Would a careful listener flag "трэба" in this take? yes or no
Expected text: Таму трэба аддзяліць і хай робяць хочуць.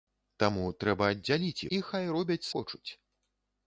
no